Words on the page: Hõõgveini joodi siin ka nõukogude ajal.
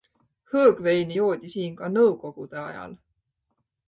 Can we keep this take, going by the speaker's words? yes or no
yes